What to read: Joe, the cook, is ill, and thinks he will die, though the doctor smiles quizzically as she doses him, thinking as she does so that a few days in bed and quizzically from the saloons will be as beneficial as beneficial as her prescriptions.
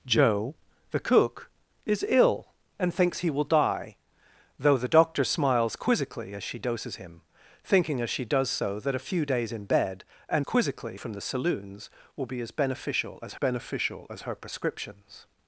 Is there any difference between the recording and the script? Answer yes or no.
no